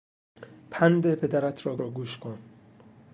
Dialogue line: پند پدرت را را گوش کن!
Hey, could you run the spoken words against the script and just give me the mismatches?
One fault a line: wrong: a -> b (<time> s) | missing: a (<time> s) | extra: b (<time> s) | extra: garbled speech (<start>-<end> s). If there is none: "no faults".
no faults